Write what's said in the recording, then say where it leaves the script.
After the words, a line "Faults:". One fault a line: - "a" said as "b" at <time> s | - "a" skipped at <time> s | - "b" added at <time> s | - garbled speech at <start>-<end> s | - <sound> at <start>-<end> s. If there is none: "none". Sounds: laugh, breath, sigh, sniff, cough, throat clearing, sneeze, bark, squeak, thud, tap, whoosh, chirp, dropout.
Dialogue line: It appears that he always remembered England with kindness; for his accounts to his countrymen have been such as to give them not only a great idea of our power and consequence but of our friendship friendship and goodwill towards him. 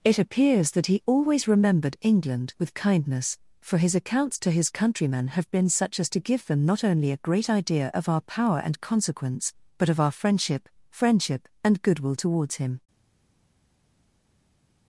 It appears that he always remembered England with kindness; for his accounts to his countrymen have been such as to give them not only a great idea of our power and consequence but of our friendship friendship and goodwill towards him.
Faults:
none